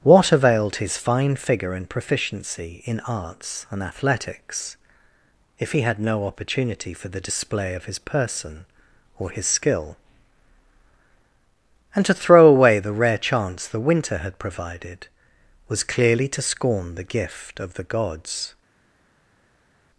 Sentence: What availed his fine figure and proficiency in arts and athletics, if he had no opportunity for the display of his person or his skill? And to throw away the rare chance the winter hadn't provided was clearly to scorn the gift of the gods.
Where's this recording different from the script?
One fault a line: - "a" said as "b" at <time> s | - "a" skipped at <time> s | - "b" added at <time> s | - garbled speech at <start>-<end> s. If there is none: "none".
- "hadn't" said as "had" at 14.2 s